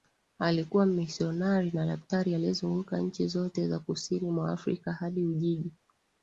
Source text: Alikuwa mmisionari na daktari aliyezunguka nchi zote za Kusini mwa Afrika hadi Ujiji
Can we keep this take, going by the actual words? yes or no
yes